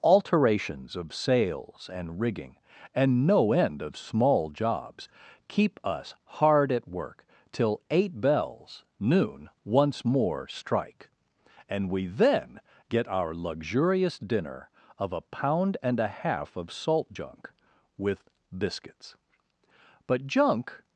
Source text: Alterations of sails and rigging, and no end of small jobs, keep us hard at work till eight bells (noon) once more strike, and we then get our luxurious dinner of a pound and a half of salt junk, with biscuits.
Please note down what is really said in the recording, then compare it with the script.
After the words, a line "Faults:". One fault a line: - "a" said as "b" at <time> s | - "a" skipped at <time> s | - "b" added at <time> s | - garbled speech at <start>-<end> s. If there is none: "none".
Alterations of sails and rigging, and no end of small jobs, keep us hard at work till eight bells (noon) once more strike, and we then get our luxurious dinner of a pound and a half of salt junk, with biscuits. But junk
Faults:
- "But junk" added at 20.0 s